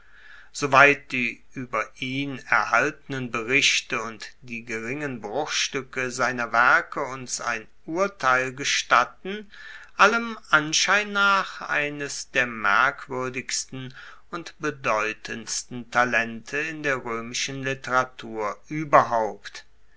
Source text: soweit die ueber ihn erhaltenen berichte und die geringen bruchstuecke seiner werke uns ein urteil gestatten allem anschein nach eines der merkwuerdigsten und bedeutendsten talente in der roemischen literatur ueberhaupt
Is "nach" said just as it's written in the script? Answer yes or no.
yes